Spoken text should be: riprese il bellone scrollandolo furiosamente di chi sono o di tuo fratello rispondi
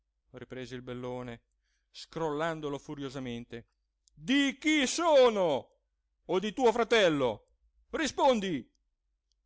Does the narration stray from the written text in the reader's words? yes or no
no